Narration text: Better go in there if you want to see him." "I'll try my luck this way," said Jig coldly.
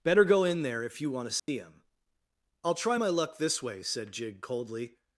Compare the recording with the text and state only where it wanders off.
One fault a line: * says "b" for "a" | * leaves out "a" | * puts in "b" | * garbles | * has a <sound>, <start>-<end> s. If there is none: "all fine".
* has a dropout, 1.4-1.5 s